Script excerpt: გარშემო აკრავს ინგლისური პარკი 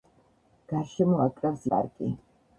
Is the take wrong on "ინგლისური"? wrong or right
wrong